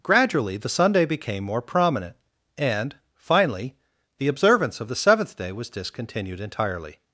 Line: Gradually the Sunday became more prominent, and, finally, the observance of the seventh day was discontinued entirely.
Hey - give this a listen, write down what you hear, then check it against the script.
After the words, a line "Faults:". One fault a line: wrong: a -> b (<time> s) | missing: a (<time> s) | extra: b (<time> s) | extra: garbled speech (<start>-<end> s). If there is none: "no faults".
Gradually the Sunday became more prominent, and, finally, the observance of the seventh day was discontinued entirely.
Faults:
no faults